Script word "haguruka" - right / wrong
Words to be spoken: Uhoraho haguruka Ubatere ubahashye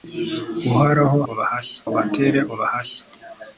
wrong